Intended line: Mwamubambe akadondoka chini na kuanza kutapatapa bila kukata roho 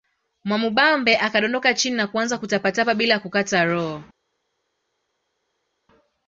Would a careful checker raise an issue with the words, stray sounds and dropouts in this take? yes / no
no